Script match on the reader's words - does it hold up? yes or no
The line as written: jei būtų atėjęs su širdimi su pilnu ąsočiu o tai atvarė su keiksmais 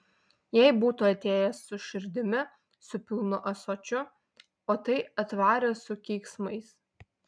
yes